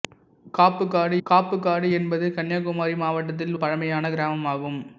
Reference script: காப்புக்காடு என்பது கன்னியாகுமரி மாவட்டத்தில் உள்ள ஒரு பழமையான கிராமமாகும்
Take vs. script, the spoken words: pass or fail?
fail